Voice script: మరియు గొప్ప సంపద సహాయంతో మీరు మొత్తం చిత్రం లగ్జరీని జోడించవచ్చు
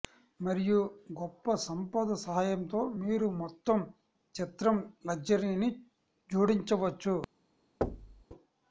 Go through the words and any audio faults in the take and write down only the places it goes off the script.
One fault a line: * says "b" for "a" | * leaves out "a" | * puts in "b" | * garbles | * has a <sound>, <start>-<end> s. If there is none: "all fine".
* has a thud, 7.8-8.2 s